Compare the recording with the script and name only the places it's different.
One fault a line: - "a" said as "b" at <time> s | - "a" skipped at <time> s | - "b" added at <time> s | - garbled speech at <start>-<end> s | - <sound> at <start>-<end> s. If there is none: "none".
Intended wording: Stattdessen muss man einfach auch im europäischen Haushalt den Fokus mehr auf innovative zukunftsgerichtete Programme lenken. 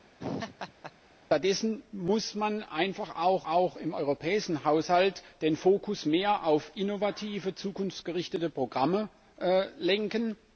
- laugh at 0.2-0.9 s
- "auch" added at 3.5 s